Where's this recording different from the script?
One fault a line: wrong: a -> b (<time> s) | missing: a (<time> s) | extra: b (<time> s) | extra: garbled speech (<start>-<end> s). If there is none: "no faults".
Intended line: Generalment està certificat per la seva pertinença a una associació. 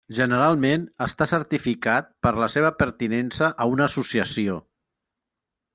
no faults